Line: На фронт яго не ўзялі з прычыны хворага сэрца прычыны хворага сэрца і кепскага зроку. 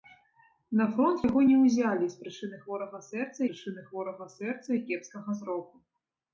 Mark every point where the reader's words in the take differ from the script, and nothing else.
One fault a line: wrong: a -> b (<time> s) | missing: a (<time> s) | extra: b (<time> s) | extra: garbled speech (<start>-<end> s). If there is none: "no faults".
no faults